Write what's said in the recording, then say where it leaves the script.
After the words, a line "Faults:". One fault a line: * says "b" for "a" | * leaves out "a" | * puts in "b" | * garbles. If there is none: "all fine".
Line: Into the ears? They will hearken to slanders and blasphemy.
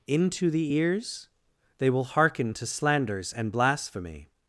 Into the ears? They will hearken to slanders and blasphemy.
Faults:
all fine